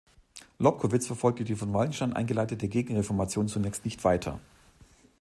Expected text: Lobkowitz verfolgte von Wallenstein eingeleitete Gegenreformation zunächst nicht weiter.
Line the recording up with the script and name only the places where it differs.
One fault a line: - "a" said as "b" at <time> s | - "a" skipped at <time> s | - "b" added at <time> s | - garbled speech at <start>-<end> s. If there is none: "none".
- "die" added at 1.4 s